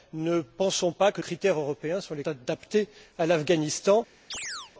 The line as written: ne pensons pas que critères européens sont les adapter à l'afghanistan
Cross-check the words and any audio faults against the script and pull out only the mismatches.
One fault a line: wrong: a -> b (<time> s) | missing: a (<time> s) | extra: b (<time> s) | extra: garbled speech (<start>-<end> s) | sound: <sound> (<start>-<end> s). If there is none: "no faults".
sound: chirp (4.3-4.7 s)